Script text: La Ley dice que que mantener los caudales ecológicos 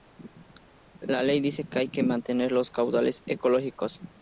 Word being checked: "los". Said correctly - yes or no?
yes